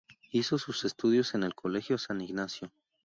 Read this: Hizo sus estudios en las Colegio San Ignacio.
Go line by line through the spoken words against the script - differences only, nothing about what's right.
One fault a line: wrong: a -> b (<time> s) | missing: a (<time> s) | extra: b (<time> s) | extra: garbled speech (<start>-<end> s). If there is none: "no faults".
wrong: las -> el (1.4 s)